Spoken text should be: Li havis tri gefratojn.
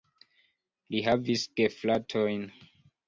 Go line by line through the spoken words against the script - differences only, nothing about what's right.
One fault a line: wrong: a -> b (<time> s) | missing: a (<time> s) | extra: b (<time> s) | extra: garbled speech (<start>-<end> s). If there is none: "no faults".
missing: tri (1.4 s)